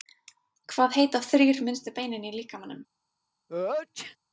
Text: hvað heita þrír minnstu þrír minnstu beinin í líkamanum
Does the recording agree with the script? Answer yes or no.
no